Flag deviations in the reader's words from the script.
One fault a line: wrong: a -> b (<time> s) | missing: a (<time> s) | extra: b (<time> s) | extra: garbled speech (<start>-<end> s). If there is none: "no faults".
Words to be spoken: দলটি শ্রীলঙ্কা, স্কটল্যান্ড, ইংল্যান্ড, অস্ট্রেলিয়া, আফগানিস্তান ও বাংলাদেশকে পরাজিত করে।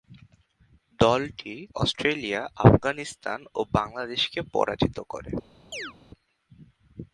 missing: শ্রীলঙ্কা স্কটল্যান্ড ইংল্যান্ড (1.6 s)